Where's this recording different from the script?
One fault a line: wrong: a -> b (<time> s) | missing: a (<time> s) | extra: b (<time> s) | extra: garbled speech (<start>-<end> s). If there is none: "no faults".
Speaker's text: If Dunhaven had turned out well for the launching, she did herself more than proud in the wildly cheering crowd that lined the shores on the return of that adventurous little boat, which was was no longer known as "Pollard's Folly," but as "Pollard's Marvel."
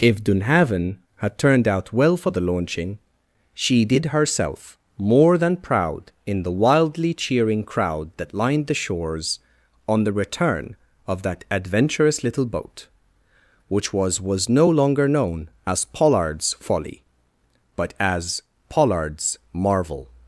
no faults